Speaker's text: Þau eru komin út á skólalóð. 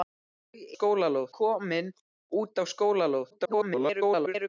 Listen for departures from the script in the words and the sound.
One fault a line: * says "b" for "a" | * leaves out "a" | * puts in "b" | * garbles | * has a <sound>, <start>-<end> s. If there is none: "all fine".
* says "skólalóð" for "eru"
* garbles